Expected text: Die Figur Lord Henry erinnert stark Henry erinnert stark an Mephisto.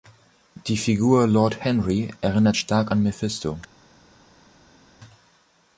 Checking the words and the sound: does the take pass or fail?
fail